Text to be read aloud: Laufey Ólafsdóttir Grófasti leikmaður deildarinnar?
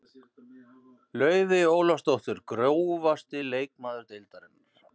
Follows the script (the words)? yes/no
yes